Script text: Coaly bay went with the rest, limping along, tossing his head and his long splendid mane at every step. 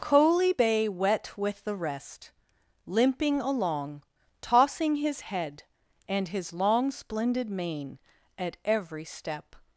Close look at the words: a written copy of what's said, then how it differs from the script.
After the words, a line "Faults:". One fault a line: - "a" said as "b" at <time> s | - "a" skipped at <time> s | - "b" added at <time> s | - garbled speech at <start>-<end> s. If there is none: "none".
Coaly bay wet with the rest, limping along, tossing his head and his long splendid mane at every step.
Faults:
- "went" said as "wet" at 0.9 s